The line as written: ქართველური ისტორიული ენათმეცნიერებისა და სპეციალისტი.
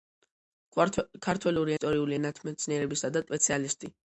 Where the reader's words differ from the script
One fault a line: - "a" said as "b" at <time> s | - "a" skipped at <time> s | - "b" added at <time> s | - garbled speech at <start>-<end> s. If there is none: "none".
none